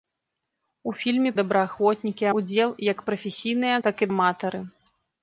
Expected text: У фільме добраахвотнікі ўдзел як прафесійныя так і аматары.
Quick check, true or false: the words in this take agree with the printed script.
true